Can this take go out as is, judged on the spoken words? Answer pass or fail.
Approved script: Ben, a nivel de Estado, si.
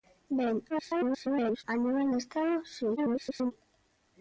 fail